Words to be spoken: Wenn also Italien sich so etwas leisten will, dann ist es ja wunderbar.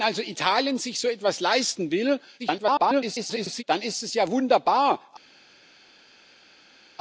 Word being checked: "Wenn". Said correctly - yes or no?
yes